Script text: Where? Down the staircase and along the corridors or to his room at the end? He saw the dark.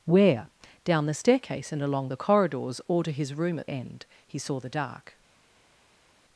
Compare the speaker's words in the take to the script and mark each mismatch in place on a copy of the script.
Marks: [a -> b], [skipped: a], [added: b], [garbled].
Where? Down the staircase and along the corridors or to his room at [skipped: the] end? He saw the dark.